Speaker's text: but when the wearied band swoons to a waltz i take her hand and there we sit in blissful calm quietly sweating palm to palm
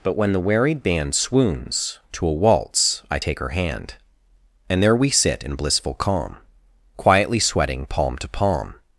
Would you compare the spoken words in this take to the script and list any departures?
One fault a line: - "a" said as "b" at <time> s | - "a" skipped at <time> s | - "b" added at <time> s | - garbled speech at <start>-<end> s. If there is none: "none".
none